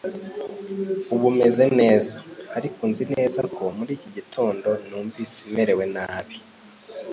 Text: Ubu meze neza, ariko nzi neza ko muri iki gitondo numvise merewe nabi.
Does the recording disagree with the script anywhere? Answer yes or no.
no